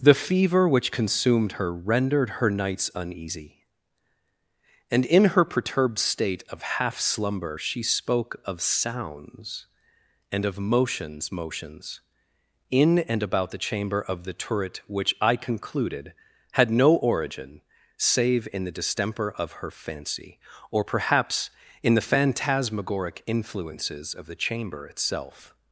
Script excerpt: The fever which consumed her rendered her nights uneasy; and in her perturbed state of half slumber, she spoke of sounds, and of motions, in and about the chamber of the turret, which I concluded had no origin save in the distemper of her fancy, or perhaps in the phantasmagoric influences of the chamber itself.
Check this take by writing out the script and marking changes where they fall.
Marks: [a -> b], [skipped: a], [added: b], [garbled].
The fever which consumed her rendered her nights uneasy; and in her perturbed state of half slumber, she spoke of sounds, and of motions, [added: motions] in and about the chamber of the turret, which I concluded had no origin save in the distemper of her fancy, or perhaps in the phantasmagoric influences of the chamber itself.